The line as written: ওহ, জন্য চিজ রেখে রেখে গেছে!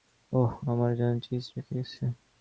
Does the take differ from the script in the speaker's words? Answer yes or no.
yes